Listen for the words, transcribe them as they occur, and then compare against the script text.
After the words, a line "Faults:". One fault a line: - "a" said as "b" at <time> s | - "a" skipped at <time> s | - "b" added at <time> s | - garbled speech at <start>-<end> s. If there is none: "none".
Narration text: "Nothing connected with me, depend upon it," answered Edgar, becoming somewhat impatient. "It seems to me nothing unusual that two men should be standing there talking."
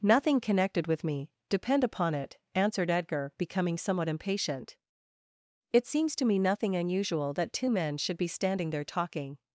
"Nothing connected with me, depend upon it," answered Edgar, becoming somewhat impatient. "It seems to me nothing unusual that two men should be standing there talking."
Faults:
none